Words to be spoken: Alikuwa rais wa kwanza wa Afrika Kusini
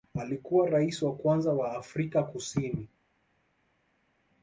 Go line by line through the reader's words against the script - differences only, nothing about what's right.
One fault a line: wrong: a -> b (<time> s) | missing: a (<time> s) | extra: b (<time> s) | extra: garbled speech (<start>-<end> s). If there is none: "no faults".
no faults